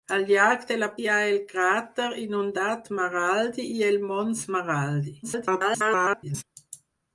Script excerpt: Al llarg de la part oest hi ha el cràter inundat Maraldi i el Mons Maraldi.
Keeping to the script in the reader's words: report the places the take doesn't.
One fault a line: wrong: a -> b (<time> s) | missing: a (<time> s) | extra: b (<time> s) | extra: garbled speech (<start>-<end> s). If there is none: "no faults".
missing: part oest (0.9 s)
extra: garbled speech (5.2-6.4 s)